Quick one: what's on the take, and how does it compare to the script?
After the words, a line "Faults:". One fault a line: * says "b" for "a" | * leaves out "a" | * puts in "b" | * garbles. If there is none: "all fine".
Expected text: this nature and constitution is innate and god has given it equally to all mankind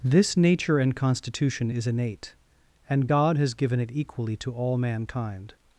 this nature and constitution is innate and god has given it equally to all mankind
Faults:
all fine